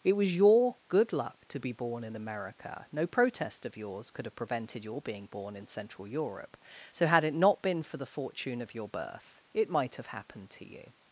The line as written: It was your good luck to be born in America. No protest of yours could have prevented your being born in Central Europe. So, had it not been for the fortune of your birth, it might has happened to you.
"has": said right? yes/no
no